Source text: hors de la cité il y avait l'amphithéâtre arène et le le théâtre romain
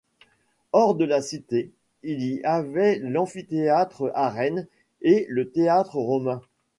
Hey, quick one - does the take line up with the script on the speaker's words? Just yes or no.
no